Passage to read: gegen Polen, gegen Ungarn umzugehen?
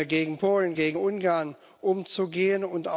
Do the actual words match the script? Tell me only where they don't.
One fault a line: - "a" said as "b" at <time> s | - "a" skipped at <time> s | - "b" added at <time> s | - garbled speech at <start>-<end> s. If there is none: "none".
none